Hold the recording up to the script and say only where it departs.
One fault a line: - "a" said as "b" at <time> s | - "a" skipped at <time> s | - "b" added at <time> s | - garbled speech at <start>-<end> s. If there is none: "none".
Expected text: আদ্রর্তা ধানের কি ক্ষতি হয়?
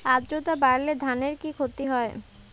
- "বাড়লে" added at 0.6 s